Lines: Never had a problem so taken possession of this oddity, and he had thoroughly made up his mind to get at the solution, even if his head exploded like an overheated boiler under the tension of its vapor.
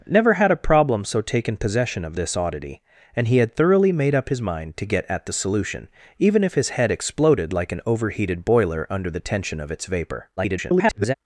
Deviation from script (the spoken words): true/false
true